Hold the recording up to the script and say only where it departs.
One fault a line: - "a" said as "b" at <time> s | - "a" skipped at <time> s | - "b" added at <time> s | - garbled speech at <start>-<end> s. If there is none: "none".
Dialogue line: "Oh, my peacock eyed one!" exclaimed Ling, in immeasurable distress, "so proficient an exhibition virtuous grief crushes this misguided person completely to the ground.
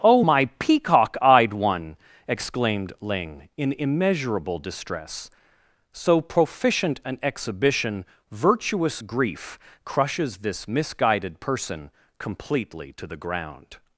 none